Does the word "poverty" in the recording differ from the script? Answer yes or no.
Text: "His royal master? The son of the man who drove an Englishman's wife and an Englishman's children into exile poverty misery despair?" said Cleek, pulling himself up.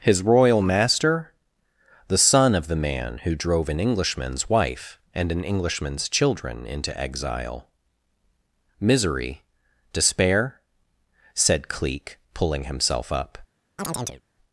yes